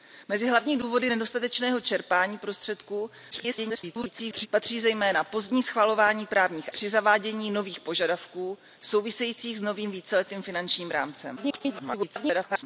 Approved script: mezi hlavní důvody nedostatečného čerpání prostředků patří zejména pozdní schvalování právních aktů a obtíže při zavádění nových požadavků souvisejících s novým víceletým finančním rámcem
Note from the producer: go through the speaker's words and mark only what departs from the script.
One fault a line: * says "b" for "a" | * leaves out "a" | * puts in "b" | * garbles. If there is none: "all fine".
* garbles
* leaves out "aktů a obtíže"
* garbles